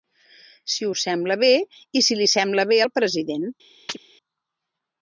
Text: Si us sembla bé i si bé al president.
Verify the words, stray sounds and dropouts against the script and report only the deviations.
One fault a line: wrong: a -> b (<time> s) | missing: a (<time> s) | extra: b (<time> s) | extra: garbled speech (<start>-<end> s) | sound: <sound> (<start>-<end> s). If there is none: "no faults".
extra: li sembla (2.2 s)
sound: chirp (3.9-4.0 s)